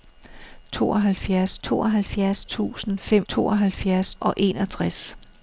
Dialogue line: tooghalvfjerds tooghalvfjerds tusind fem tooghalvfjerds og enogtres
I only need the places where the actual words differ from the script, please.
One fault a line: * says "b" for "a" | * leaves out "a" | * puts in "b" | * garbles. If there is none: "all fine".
all fine